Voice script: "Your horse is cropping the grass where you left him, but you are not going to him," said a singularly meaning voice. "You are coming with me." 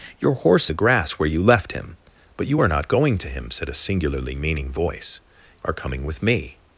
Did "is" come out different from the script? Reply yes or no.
yes